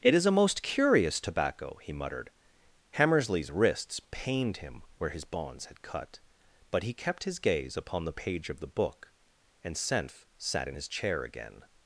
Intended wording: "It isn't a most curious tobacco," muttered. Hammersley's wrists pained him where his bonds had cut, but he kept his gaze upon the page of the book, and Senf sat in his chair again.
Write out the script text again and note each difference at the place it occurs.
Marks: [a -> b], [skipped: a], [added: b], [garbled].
"It [isn't -> is] a most curious tobacco," [added: he] muttered. Hammersley's wrists pained him where his bonds had cut, but he kept his gaze upon the page of the book, and Senf sat in his chair again.